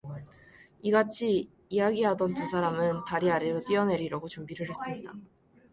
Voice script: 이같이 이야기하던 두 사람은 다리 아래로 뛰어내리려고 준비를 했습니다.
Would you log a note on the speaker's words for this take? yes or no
no